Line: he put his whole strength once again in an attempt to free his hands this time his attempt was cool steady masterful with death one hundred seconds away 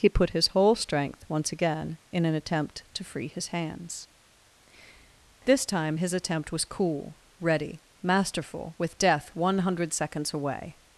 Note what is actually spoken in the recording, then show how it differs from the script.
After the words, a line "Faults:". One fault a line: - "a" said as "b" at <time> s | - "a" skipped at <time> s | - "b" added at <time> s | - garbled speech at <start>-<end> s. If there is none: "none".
he put his whole strength once again in an attempt to free his hands this time his attempt was cool ready masterful with death one hundred seconds away
Faults:
- "steady" said as "ready" at 7.4 s